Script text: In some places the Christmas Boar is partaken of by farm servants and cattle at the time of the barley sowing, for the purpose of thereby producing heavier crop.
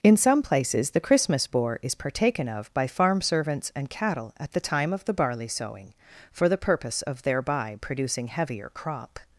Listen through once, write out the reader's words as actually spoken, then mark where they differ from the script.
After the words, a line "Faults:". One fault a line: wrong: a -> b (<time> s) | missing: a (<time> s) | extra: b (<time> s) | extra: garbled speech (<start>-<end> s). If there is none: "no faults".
In some places the Christmas Boar is partaken of by farm servants and cattle at the time of the barley sowing, for the purpose of thereby producing heavier crop.
Faults:
no faults